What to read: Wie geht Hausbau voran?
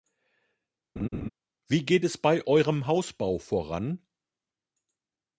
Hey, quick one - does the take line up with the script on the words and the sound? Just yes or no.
no